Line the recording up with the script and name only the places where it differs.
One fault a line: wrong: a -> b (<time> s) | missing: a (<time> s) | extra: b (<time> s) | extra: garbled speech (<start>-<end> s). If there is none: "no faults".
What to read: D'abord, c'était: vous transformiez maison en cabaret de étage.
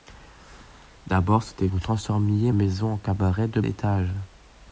no faults